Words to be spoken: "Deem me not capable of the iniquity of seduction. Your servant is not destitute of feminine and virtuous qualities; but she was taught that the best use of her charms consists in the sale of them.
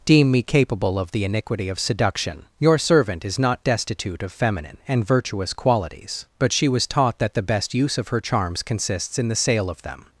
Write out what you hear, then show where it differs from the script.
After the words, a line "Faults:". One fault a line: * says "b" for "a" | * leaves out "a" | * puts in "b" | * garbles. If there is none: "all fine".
"Deem me capable of the iniquity of seduction. Your servant is not destitute of feminine and virtuous qualities; but she was taught that the best use of her charms consists in the sale of them.
Faults:
* leaves out "not"